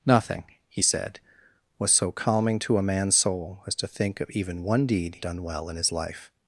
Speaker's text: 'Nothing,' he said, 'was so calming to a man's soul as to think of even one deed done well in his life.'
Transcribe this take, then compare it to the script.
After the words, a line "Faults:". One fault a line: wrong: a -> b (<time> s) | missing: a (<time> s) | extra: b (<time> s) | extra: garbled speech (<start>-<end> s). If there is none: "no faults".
'Nothing,' he said, 'was so calming to a man's soul as to think of even one deed done well in his life.'
Faults:
no faults